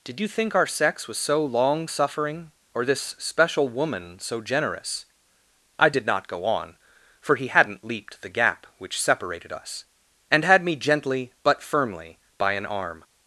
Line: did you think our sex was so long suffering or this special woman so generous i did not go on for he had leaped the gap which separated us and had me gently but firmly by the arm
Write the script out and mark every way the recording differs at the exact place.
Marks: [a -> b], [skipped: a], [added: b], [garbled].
did you think our sex was so long suffering or this special woman so generous i did not go on for he [had -> hadn't] leaped the gap which separated us and had me gently but firmly by [the -> an] arm